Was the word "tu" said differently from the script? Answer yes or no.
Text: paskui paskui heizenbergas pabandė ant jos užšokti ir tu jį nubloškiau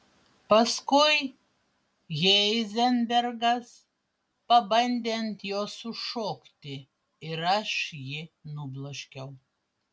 yes